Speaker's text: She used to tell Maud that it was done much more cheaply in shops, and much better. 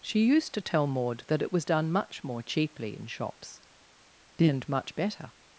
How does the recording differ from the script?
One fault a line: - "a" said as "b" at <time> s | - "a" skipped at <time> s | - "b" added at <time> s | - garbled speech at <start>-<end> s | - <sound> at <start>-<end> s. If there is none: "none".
none